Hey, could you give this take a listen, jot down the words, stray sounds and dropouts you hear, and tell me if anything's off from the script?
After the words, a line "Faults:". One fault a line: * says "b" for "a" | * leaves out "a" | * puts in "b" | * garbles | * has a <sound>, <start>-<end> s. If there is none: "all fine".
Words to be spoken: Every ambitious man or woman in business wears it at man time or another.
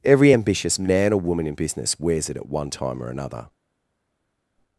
Every ambitious man or woman in business wears it at one time or another.
Faults:
* says "one" for "man"